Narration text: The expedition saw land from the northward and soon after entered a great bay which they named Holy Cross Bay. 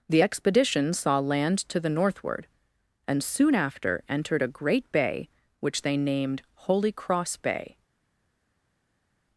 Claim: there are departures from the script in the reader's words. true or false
true